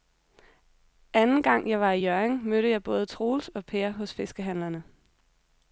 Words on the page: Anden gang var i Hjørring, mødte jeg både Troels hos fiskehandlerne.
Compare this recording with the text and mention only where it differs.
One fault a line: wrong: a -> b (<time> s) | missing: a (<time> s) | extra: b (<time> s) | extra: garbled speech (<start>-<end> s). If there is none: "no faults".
extra: jeg (1.7 s)
extra: og Per (3.5 s)